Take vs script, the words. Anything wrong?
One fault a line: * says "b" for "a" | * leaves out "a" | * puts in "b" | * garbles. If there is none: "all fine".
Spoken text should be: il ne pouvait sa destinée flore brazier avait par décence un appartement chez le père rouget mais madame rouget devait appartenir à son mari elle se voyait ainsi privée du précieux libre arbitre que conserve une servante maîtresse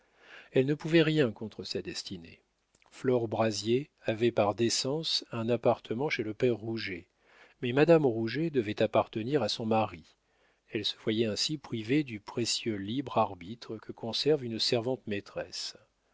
* says "elle" for "il"
* puts in "rien contre"